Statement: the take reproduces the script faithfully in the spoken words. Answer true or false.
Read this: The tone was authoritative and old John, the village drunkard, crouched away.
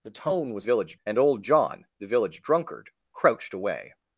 false